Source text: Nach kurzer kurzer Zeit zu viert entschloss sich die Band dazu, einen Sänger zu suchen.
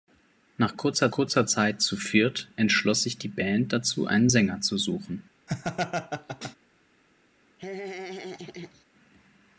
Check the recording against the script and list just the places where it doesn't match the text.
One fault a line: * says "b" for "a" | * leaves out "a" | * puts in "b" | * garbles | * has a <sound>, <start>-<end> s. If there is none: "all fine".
* has a laugh, 5.5-6.6 s
* has a laugh, 7.6-8.8 s